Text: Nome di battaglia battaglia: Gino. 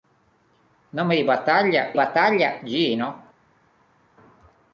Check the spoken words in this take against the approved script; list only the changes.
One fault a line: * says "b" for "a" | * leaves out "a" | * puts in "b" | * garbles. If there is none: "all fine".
all fine